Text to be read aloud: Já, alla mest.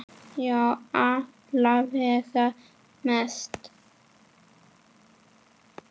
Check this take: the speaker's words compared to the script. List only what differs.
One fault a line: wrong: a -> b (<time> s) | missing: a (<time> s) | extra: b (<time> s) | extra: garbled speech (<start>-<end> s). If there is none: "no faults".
extra: vega (1.8 s)